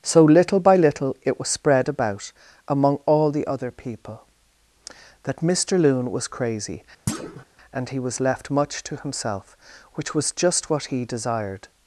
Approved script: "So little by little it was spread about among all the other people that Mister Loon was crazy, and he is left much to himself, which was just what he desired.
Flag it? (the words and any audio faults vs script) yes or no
yes